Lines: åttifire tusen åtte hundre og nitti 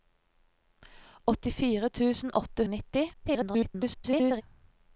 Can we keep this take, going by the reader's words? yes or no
no